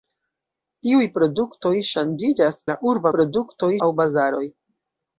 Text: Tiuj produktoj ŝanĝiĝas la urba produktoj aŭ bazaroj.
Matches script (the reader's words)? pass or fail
pass